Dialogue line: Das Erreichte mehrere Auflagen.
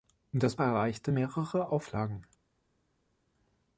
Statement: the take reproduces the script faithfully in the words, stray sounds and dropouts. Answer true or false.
true